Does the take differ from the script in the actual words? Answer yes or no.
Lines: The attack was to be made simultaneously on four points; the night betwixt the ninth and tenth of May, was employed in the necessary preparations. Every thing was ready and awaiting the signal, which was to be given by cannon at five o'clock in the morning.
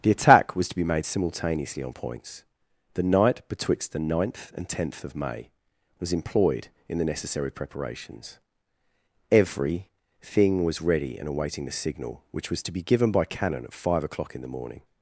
yes